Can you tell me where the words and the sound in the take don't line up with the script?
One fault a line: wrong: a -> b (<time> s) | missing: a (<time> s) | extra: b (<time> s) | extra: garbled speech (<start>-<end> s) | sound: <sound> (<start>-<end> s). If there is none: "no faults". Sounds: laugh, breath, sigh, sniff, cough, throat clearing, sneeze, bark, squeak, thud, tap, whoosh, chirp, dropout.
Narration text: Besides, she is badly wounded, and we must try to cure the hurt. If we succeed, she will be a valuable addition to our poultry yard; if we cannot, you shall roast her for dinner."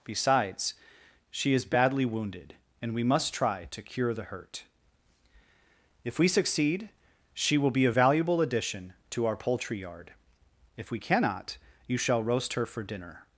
no faults